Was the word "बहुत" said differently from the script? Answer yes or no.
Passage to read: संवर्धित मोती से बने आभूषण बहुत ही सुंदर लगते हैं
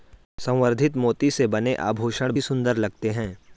yes